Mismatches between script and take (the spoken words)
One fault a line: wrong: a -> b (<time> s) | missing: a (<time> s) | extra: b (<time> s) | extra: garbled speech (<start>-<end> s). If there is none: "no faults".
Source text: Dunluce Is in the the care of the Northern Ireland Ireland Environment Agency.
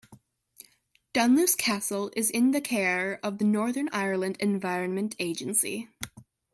extra: Castle (1.5 s)
missing: the (2.6 s)
missing: Ireland (4.4 s)